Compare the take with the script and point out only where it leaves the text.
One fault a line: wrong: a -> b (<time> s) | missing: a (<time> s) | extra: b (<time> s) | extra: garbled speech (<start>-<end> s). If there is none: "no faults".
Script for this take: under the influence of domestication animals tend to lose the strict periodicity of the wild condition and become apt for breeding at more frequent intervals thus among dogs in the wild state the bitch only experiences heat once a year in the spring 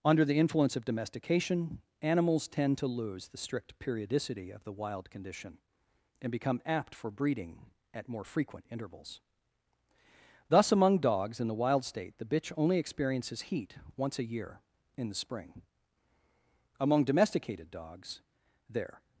extra: among domesticated dogs there (16.8 s)